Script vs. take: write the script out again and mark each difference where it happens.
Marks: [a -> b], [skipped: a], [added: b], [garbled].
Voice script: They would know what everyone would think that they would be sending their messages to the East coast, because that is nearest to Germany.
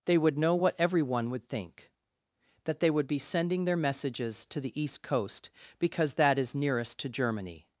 They would know what everyone would think that they would be sending their messages to the East coast, because that is nearest to Germany.